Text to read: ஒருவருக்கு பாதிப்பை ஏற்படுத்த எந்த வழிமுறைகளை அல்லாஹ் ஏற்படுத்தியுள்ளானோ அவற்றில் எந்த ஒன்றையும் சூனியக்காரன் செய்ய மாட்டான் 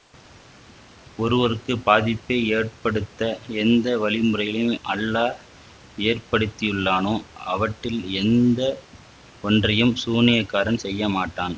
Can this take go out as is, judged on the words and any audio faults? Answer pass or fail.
pass